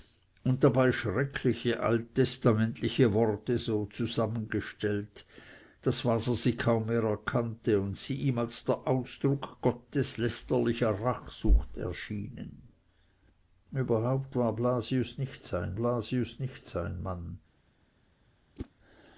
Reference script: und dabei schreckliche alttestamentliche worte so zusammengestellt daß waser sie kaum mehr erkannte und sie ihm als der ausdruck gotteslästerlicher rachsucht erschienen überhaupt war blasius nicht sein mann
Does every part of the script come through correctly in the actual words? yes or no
no